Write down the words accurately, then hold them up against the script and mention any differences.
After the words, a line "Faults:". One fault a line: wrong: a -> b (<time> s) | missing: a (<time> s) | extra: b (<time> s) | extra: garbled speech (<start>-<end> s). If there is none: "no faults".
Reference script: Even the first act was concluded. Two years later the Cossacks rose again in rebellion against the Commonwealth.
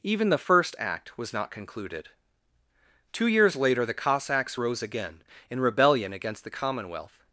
Even the first act was not concluded. Two years later the Cossacks rose again in rebellion against the Commonwealth.
Faults:
extra: not (1.3 s)